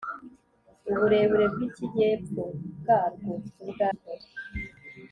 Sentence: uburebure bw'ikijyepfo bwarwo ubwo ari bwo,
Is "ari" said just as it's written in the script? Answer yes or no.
no